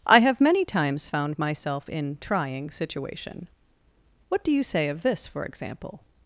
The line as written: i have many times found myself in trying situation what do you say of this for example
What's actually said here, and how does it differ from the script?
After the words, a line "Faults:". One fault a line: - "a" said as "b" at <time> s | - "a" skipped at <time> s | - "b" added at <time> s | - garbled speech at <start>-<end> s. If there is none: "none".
i have many times found myself in trying situation what do you say of this for example
Faults:
none